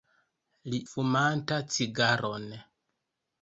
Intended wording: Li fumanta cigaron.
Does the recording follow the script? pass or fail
pass